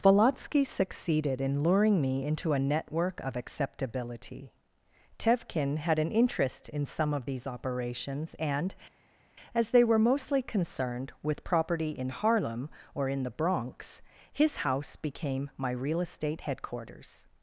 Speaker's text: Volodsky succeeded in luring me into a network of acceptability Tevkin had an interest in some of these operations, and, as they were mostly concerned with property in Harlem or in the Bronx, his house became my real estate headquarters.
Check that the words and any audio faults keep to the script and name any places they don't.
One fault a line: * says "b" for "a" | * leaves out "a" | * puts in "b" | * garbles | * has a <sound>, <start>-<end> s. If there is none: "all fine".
all fine